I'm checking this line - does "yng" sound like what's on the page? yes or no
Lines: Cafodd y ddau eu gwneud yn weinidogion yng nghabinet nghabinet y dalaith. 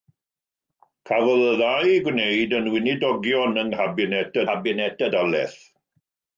yes